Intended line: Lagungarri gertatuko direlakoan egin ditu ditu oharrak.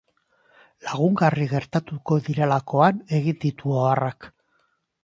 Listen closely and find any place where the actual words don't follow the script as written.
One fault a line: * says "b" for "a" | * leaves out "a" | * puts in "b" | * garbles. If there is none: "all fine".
* leaves out "ditu"